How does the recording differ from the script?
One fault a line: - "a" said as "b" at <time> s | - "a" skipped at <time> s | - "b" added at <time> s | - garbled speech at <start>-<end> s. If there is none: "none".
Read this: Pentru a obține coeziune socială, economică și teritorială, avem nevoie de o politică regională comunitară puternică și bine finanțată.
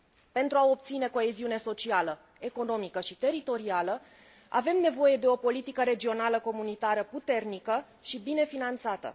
none